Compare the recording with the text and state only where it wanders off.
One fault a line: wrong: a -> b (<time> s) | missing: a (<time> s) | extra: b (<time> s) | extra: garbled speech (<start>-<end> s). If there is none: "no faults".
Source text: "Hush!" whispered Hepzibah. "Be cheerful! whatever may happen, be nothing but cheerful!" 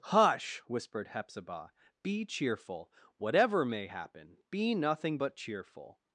no faults